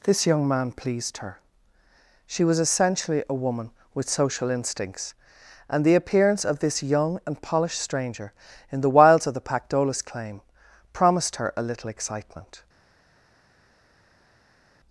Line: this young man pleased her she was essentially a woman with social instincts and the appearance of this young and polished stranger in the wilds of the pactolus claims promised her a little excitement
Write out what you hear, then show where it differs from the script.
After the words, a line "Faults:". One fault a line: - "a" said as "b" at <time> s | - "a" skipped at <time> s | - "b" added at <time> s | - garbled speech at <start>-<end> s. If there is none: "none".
this young man pleased her she was essentially a woman with social instincts and the appearance of this young and polished stranger in the wilds of the pactolus claim promised her a little excitement
Faults:
- "claims" said as "claim" at 10.0 s